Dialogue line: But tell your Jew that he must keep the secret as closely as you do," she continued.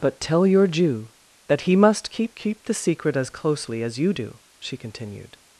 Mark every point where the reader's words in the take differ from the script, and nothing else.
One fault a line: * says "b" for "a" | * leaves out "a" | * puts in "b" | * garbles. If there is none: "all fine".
* puts in "keep"